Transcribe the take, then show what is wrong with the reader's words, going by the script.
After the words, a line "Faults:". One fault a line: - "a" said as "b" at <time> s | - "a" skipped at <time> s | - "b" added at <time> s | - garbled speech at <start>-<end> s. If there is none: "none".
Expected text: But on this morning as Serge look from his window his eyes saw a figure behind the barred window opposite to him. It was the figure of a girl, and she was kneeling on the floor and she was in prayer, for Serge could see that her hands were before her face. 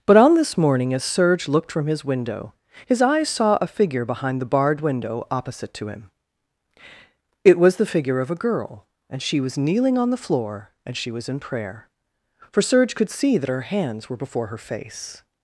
But on this morning as Serge looked from his window his eyes saw a figure behind the barred window opposite to him. It was the figure of a girl, and she was kneeling on the floor and she was in prayer, for Serge could see that her hands were before her face.
Faults:
- "look" said as "looked" at 1.5 s